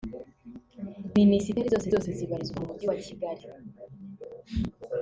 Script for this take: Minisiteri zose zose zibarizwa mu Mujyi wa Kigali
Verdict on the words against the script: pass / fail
pass